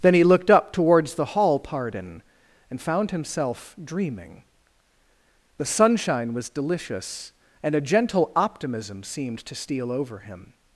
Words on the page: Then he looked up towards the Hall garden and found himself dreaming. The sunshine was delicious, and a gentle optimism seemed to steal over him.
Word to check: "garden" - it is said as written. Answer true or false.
false